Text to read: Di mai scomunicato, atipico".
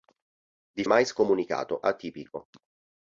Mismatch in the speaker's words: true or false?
false